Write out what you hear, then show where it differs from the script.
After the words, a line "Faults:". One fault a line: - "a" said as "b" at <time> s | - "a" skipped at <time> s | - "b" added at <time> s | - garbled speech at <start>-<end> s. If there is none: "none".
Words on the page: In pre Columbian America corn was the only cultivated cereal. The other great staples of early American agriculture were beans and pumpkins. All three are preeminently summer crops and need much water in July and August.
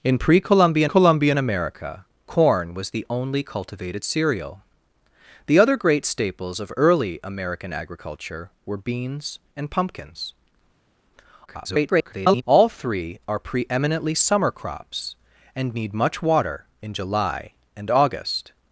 In pre Columbian Columbian America corn was the only cultivated cereal. The other great staples of early American agriculture were beans and pumpkins. [garbled] All three are preeminently summer crops and need much water in July and August.
Faults:
- "Columbian" added at 0.8 s
- garbled speech at 11.5-12.4 s